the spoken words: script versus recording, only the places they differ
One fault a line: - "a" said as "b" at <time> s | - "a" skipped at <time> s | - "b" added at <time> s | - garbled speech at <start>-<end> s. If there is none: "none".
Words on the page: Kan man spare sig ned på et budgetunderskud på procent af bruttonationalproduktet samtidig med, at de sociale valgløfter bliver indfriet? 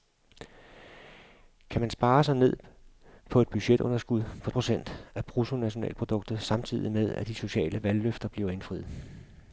none